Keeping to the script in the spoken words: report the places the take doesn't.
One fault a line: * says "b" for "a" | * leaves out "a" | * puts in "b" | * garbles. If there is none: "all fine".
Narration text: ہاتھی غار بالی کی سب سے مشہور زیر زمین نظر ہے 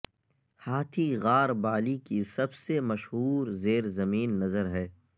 all fine